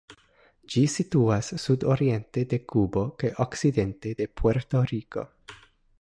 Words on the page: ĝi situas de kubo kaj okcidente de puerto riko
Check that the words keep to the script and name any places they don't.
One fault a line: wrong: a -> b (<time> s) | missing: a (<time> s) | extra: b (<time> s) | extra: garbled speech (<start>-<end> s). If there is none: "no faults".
extra: sudoriente (1.6 s)